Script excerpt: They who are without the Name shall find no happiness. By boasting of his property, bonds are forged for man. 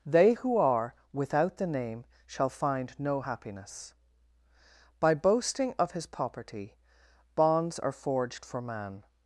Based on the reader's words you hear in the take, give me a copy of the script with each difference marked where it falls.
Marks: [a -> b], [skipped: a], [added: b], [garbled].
They who are without the Name shall find no happiness. By boasting of his [property, -> poverty] bonds are forged for man.